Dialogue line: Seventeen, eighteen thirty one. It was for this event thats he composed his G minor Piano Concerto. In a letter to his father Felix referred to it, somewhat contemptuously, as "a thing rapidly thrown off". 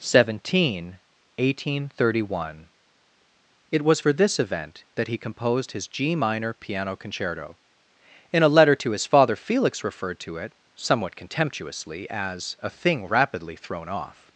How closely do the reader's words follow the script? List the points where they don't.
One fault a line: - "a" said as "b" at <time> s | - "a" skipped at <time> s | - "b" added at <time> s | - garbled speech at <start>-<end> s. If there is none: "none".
- "thats" said as "that" at 4.9 s